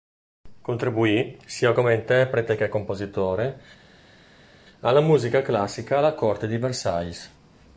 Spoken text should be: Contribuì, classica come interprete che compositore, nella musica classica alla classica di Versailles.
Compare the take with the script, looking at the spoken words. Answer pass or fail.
fail